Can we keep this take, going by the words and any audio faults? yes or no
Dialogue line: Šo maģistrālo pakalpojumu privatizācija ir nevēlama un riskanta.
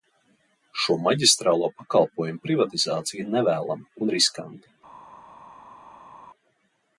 yes